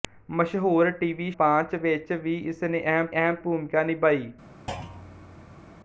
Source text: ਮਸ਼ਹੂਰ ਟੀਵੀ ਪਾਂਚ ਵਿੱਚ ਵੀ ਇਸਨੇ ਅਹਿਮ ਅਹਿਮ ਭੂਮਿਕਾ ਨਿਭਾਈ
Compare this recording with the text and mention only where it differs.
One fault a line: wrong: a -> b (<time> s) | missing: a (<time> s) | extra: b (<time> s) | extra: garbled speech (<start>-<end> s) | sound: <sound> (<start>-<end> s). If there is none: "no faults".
sound: thud (4.7-5.8 s)